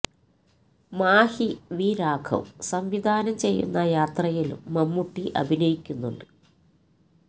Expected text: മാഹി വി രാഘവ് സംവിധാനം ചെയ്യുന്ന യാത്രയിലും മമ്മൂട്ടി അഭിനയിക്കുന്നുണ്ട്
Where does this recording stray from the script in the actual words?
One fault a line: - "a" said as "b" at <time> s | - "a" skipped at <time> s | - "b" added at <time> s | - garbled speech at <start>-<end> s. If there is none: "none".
none